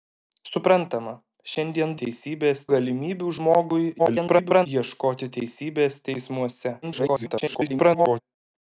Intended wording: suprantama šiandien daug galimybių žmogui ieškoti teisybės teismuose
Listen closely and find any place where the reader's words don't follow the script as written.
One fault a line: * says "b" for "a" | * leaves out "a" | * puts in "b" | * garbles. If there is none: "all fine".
* says "teisybės" for "daug"
* garbles
* garbles